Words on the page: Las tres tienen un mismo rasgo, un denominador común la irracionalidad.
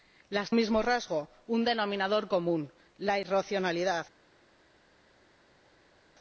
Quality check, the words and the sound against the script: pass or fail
fail